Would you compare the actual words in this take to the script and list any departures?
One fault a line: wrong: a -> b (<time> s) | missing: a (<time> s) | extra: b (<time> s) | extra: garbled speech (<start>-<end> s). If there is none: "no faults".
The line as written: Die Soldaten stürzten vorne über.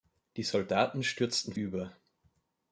missing: vorne (1.5 s)